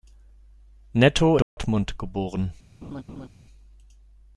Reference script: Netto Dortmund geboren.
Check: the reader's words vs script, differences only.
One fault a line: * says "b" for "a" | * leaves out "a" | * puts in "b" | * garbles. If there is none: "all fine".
all fine